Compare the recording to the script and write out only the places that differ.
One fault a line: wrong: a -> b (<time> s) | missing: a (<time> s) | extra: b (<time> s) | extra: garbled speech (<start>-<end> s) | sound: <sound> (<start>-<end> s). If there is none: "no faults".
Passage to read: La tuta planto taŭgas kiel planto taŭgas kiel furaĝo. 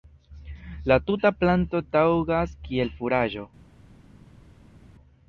missing: planto taŭgas kiel (2.9 s)